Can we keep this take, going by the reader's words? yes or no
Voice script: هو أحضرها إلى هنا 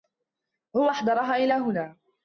yes